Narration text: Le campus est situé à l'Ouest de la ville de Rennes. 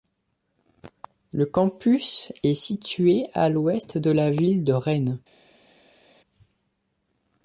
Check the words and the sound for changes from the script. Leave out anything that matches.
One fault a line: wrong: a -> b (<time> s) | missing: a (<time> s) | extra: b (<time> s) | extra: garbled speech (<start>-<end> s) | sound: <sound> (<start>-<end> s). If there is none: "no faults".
no faults